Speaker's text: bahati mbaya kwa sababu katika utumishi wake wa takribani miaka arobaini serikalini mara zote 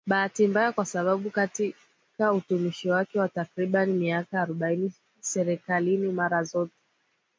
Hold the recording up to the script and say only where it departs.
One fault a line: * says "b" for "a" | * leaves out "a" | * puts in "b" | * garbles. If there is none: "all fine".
all fine